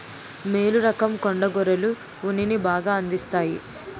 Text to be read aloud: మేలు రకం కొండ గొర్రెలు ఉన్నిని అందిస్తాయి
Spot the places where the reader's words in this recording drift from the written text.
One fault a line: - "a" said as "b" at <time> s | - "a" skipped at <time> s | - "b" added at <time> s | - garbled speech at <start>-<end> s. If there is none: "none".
- "బాగా" added at 2.7 s